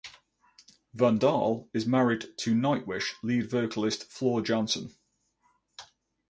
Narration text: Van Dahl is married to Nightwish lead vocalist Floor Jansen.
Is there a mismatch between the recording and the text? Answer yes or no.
no